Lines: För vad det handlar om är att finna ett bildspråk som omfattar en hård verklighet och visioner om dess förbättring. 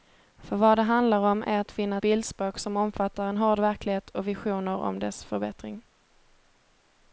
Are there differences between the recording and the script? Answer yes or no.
yes